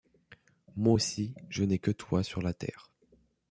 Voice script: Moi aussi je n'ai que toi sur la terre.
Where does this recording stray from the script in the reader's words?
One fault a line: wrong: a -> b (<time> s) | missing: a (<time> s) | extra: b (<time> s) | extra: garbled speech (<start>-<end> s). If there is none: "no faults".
no faults